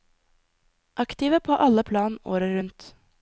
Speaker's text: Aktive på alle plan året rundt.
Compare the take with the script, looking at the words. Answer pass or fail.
pass